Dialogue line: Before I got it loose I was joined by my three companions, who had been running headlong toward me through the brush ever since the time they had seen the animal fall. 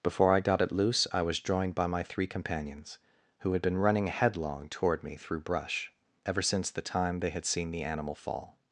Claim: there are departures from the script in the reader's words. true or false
true